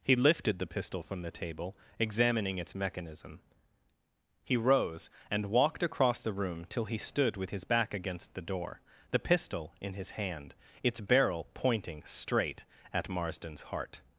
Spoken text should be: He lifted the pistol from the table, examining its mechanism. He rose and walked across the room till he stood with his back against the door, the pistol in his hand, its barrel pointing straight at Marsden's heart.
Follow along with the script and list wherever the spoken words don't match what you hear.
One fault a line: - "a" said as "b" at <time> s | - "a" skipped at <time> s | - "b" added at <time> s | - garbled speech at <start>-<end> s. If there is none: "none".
none